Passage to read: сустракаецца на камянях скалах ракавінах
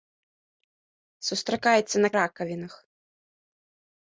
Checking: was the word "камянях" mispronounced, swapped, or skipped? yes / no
yes